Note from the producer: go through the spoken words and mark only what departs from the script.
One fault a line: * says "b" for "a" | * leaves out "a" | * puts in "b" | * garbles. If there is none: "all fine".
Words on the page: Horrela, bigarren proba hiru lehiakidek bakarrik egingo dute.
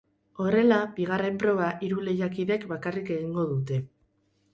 all fine